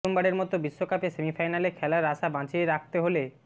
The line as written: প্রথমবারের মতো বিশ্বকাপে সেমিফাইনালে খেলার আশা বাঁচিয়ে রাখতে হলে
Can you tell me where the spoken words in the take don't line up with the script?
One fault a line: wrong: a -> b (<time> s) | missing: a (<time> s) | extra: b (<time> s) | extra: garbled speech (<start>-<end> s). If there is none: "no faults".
no faults